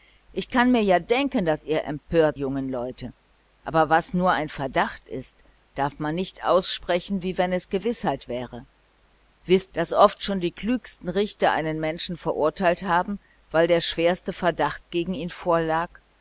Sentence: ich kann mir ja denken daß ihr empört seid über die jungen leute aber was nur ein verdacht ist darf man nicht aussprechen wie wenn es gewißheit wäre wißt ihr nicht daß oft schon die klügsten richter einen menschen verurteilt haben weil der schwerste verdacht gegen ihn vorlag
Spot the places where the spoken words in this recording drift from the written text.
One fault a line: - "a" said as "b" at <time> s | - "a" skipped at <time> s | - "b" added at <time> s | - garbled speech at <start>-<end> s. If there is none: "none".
- "seid über die" skipped at 2.4 s
- "ihr nicht" skipped at 9.7 s